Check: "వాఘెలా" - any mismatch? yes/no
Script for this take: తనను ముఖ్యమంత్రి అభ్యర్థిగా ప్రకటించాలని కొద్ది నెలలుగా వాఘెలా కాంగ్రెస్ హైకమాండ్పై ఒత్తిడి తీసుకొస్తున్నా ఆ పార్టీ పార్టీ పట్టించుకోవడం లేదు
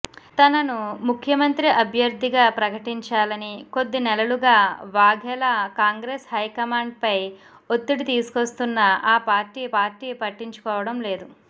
no